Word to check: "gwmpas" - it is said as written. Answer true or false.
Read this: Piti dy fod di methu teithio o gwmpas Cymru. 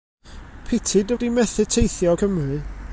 false